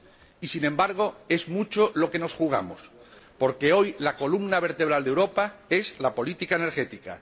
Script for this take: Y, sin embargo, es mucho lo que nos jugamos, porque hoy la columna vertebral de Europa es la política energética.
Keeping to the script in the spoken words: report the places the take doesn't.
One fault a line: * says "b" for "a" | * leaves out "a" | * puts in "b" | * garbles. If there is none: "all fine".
all fine